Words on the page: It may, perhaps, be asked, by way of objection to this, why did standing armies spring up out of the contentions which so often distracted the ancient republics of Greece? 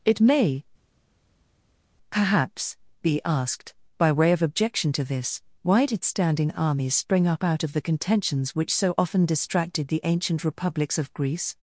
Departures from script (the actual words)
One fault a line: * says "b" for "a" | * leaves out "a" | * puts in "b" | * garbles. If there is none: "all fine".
all fine